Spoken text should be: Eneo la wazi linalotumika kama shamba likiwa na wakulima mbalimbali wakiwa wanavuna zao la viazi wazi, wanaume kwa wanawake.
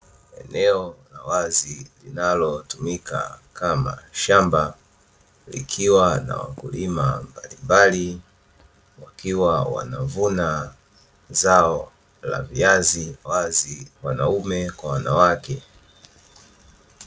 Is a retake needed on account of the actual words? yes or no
no